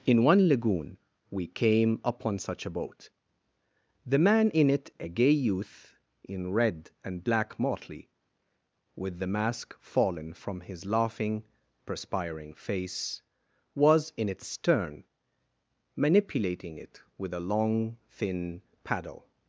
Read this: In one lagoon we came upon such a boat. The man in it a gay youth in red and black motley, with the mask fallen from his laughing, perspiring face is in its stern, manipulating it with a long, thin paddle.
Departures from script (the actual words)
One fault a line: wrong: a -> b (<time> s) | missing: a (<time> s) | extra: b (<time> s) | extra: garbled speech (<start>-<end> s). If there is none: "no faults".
wrong: is -> was (13.8 s)